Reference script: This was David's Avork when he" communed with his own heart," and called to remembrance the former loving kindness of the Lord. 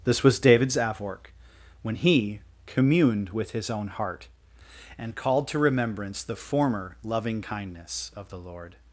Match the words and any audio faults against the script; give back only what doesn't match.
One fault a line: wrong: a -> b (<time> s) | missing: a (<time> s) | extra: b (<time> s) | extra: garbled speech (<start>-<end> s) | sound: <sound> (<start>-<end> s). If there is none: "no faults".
no faults